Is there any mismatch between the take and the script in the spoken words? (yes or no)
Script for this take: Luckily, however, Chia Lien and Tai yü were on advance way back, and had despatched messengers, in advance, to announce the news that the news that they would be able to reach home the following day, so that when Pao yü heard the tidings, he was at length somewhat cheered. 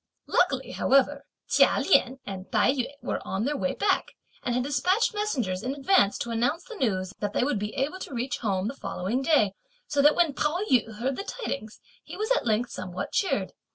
yes